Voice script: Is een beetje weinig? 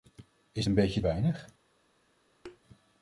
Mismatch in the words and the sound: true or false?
true